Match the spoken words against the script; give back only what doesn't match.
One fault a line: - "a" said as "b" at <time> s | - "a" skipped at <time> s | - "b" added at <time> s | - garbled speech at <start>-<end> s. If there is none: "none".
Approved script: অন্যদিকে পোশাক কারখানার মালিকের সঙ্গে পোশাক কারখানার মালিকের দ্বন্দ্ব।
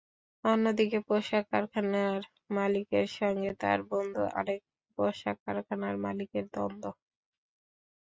- "তাঁর বন্ধু আরেক" added at 3.6 s